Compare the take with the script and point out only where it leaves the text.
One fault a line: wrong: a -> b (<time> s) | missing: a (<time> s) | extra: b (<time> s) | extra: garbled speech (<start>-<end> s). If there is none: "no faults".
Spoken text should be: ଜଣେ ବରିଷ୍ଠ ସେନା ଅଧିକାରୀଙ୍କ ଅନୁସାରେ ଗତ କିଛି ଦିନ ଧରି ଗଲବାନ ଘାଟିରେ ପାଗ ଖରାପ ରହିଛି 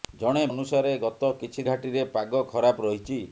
missing: ବରିଷ୍ଠ ସେନା ଅଧିକାରୀଙ୍କ (0.4 s)
missing: ଦିନ ଧରି ଗଲବାନ (1.7 s)